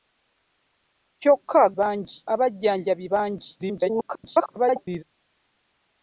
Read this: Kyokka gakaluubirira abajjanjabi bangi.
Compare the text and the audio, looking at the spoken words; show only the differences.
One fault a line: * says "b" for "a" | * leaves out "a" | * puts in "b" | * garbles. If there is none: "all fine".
* says "bangi" for "gakaluubirira"
* garbles